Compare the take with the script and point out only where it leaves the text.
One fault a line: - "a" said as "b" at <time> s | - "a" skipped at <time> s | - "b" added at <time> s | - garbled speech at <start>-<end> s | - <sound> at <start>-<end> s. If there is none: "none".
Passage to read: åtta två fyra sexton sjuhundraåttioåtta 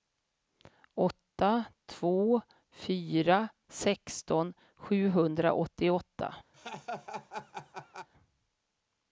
- laugh at 6.5-8.1 s